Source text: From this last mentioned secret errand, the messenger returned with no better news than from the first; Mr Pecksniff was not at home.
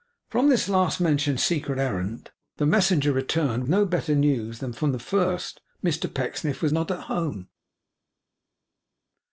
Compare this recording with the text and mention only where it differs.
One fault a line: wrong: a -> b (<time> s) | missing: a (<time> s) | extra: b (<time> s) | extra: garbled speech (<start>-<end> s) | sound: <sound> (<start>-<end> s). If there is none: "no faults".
missing: with (3.6 s)